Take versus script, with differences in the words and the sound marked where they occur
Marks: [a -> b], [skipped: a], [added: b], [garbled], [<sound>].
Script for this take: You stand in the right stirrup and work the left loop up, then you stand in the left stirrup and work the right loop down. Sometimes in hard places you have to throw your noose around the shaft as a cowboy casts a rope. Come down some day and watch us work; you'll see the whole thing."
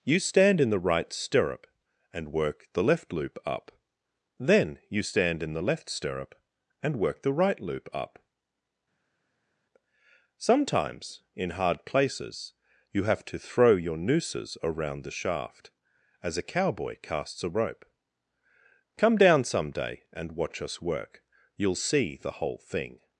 You stand in the right stirrup and work the left loop up, then you stand in the left stirrup and work the right loop [down. -> up] Sometimes in hard places you have to throw your [noose -> nooses] around the shaft as a cowboy casts a rope. Come down some day and watch us work; you'll see the whole thing."